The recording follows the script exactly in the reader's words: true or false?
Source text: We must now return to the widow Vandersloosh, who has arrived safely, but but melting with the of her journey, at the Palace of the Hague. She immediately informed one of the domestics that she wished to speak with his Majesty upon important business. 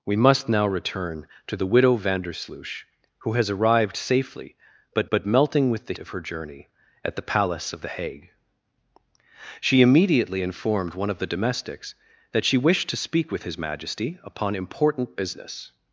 true